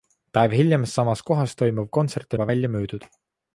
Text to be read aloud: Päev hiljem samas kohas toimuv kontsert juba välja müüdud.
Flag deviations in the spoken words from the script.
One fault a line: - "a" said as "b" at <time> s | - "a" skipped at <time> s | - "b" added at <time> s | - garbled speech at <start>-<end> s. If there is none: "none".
none